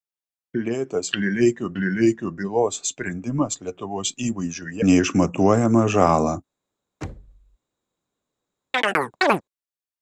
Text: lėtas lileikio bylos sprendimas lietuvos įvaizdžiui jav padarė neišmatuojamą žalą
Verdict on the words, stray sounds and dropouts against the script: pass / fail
fail